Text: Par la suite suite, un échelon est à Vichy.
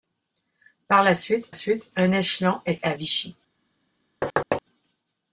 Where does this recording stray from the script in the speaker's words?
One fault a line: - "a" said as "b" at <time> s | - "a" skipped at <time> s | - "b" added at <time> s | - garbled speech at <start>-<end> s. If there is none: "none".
none